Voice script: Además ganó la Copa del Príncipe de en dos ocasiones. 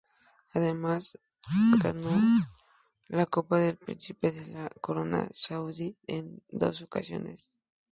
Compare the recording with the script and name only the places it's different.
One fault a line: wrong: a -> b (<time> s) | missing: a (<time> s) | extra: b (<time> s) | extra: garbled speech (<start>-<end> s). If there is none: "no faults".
extra: la Corona Saudí (4.5 s)